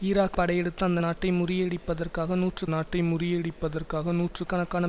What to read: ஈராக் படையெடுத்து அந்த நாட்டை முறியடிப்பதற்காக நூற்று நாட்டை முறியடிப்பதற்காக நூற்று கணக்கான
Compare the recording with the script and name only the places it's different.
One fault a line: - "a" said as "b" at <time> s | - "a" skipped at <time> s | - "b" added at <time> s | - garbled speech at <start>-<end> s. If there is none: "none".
none